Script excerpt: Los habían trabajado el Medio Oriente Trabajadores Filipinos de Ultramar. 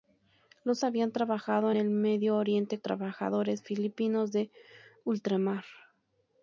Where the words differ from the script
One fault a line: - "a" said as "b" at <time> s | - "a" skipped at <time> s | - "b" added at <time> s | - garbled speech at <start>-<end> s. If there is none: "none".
none